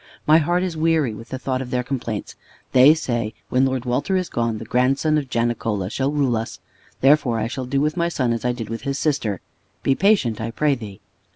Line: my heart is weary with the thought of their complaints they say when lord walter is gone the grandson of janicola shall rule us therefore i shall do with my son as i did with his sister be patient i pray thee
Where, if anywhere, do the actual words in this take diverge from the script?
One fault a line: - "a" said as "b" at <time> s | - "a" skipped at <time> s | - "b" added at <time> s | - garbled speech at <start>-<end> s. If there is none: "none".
none